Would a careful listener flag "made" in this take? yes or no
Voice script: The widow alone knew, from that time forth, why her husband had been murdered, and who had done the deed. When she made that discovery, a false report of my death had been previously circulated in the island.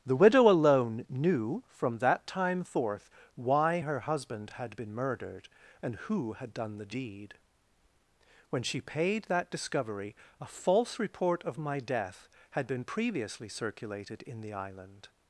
yes